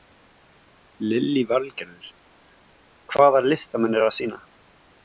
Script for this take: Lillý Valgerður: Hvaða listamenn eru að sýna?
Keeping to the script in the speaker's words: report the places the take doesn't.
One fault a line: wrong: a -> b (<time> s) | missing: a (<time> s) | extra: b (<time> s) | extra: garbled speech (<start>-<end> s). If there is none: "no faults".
no faults